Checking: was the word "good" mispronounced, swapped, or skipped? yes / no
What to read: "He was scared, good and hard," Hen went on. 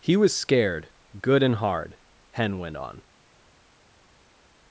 no